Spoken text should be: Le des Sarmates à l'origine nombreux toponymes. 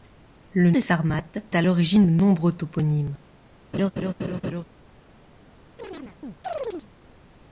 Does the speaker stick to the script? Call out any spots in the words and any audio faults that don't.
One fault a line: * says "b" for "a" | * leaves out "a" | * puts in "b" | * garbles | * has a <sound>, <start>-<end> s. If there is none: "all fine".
* has a laugh, 3.7-4.6 s
* has a chirp, 5.8-6.9 s